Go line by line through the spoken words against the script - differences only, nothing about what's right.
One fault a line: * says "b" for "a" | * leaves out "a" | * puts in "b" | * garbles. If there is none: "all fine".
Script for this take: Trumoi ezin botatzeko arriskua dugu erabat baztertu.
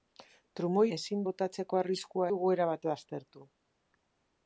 all fine